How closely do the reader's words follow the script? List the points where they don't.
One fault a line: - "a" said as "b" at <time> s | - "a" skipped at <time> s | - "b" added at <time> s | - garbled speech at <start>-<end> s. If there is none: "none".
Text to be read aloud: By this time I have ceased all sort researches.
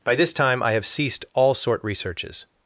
none